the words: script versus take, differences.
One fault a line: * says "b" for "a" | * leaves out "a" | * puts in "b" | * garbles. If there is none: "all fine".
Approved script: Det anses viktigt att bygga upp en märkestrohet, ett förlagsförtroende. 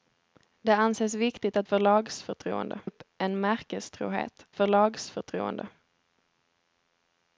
* says "förlagsförtroende" for "bygga"
* leaves out "ett"